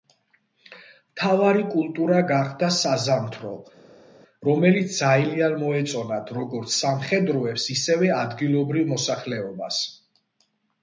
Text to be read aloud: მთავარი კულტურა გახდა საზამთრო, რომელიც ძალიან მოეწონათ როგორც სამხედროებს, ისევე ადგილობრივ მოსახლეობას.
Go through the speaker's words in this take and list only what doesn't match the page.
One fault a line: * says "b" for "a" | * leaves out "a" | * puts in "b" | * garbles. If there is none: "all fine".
all fine